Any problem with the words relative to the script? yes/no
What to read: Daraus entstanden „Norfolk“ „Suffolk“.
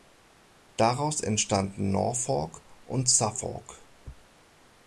yes